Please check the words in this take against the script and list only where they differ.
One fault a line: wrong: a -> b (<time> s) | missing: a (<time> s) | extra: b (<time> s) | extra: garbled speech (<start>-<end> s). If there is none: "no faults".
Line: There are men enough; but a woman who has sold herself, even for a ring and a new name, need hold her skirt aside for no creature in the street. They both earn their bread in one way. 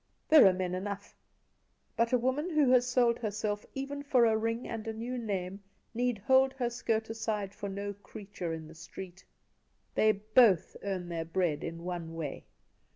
no faults